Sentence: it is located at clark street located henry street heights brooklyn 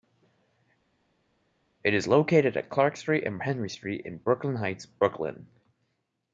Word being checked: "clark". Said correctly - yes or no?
yes